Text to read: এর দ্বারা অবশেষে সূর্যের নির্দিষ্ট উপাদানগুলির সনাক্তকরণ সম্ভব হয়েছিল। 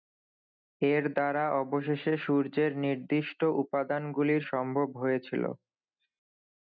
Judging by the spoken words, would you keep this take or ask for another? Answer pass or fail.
fail